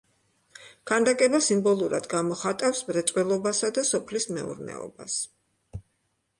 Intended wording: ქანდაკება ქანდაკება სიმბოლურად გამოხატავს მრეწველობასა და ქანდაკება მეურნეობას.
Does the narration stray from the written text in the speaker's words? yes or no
yes